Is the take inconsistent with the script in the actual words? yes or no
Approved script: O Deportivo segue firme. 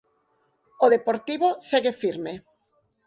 no